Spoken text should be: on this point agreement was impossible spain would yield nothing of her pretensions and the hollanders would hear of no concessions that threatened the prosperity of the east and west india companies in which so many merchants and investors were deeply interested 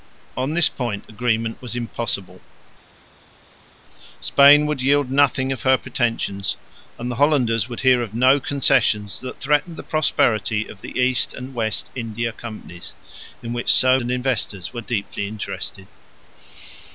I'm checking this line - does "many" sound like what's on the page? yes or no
no